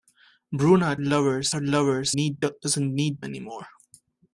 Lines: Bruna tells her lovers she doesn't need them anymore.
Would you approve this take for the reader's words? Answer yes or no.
no